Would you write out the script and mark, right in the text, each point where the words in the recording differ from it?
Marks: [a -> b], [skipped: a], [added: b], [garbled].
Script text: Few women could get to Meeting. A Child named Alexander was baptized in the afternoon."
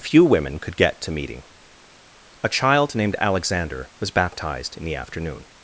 Few women could get to Meeting. A Child named Alexander was baptized in the afternoon."